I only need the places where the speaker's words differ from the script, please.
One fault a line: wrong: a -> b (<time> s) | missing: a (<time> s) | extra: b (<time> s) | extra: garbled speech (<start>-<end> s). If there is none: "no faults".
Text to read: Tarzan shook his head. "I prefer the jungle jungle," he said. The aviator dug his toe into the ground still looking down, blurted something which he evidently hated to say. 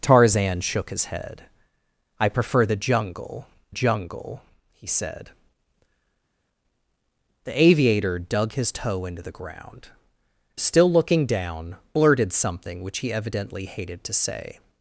no faults